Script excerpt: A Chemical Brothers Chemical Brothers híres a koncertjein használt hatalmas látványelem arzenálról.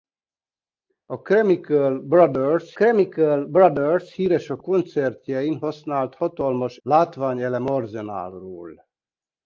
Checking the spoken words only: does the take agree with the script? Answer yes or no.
yes